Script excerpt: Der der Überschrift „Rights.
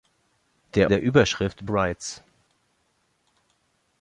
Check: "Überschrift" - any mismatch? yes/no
no